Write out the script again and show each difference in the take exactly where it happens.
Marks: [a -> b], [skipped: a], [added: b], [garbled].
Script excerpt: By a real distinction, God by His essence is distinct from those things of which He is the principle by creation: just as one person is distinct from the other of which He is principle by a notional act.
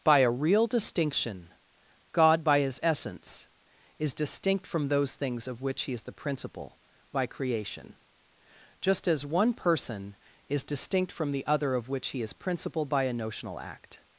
By a real distinction, God by His essence is distinct from those things of which He is the principle by creation: just as one person is distinct from the other of which He is principle by a notional act.